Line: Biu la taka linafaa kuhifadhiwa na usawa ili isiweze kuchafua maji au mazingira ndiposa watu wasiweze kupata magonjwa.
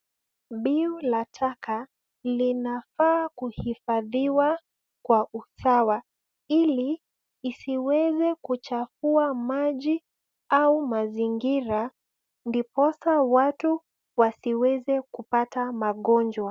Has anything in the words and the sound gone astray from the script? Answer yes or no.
yes